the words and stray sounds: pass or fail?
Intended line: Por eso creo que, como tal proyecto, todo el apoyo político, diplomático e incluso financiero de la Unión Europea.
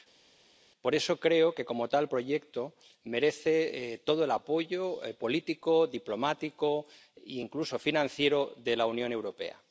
fail